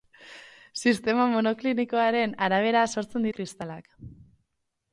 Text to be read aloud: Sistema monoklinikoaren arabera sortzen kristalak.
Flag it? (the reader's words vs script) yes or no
no